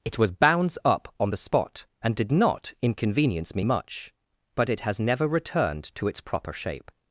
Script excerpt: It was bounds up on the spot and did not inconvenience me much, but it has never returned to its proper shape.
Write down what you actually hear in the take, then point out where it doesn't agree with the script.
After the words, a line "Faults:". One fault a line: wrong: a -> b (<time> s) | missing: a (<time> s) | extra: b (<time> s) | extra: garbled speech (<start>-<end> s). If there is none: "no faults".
It was bounds up on the spot and did not inconvenience me much, but it has never returned to its proper shape.
Faults:
no faults